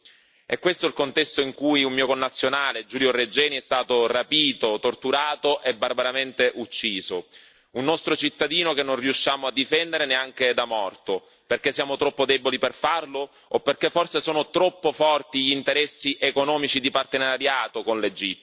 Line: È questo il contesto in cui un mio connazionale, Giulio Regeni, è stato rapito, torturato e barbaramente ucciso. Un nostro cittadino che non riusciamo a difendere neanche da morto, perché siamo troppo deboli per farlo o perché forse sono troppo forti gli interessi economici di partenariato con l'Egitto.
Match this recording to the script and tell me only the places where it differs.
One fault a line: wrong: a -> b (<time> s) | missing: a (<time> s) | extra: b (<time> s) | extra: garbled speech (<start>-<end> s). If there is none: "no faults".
no faults